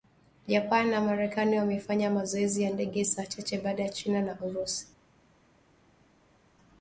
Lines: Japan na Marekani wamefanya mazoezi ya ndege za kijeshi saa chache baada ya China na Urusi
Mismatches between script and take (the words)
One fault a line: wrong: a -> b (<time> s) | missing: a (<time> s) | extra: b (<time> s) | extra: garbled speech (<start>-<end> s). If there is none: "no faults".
missing: za kijeshi (3.0 s)